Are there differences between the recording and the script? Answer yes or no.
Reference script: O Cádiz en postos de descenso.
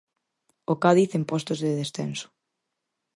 no